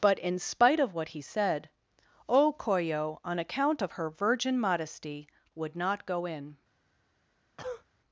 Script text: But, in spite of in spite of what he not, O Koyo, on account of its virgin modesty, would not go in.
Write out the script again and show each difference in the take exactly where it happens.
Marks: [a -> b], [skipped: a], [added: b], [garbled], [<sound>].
But, in spite of [skipped: in spite of] what he [not, -> said] O Koyo, on account of [its -> her] virgin modesty, would not go in. [cough]